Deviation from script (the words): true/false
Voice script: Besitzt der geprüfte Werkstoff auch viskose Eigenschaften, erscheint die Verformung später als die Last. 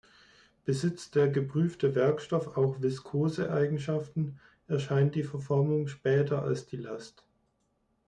false